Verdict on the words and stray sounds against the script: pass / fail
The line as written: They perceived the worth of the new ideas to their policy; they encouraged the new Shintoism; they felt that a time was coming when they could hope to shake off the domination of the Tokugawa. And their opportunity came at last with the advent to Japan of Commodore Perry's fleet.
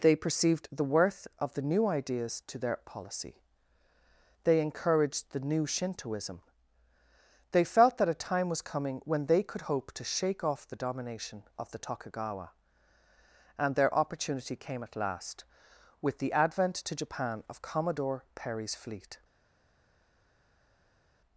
pass